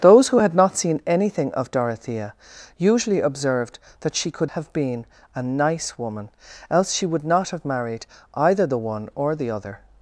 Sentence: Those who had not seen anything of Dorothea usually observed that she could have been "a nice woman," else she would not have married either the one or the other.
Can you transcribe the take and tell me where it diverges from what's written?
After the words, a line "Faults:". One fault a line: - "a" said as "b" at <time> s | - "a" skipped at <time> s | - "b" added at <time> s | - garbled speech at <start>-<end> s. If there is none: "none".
Those who had not seen anything of Dorothea usually observed that she could have been "a nice woman," else she would not have married either the one or the other.
Faults:
none